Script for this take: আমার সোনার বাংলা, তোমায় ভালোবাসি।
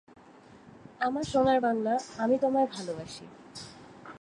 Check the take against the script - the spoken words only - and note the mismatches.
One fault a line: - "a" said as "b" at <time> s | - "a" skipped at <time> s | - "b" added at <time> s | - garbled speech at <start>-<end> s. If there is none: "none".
- "আমি" added at 2.2 s